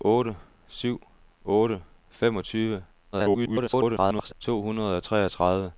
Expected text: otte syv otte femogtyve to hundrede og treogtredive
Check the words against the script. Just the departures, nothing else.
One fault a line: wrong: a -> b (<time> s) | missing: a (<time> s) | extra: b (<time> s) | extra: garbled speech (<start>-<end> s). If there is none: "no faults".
extra: garbled speech (3.1-4.3 s)